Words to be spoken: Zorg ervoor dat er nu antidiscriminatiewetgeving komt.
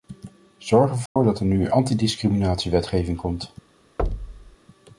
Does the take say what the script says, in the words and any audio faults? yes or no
no